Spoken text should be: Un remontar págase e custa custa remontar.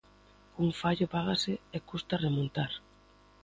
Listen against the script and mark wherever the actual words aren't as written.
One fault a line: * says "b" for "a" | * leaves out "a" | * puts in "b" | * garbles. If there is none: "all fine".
* says "fallo" for "remontar"
* leaves out "custa"